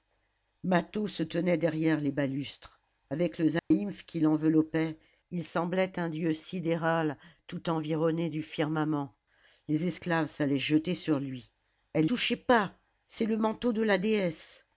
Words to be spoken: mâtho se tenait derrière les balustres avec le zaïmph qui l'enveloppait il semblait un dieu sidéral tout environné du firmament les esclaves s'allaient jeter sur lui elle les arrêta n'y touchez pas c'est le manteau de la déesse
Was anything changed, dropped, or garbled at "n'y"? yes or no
yes